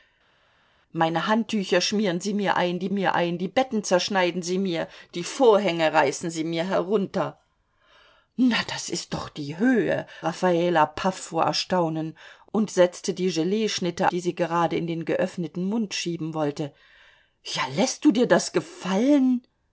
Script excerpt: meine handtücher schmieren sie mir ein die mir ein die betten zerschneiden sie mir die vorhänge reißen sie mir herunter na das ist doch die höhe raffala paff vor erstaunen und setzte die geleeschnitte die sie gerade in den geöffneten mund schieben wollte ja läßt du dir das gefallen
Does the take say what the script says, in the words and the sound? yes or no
yes